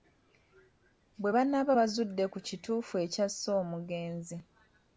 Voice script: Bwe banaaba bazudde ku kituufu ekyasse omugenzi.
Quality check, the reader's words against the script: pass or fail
pass